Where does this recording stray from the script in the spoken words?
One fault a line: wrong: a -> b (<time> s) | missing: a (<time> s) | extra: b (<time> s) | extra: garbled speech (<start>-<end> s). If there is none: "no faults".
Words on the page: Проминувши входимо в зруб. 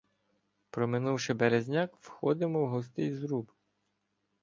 extra: березняк (1.3 s)
extra: густий (2.7 s)